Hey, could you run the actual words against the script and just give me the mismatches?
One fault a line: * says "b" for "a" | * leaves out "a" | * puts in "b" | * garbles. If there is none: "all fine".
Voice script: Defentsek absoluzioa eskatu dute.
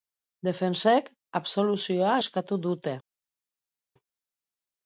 all fine